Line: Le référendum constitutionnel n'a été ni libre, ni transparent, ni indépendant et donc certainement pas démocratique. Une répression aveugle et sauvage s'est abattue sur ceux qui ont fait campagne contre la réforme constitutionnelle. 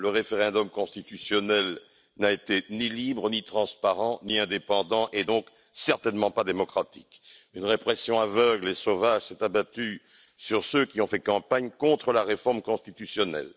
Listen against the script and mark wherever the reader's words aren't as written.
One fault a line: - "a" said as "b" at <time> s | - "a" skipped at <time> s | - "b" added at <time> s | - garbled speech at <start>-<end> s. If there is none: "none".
none